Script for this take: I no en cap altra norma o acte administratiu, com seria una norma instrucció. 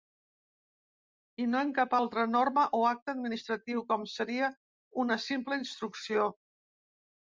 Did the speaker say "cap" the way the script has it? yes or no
yes